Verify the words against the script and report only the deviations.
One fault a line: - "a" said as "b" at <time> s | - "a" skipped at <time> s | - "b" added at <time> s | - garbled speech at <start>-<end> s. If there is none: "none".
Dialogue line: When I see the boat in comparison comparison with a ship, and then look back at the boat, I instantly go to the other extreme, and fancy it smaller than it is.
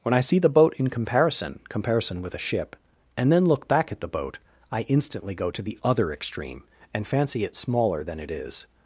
none